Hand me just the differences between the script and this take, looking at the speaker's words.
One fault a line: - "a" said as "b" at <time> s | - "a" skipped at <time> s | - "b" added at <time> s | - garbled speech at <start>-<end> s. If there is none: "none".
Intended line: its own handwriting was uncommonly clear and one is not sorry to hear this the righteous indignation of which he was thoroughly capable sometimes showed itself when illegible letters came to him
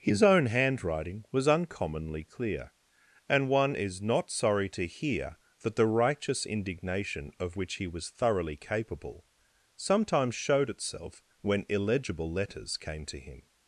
- "its" said as "his" at 0.0 s
- "this" said as "that" at 5.6 s